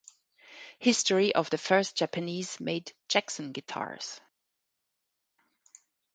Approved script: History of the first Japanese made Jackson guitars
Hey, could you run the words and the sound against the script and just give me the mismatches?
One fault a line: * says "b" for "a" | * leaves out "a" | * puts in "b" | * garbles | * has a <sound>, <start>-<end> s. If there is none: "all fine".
all fine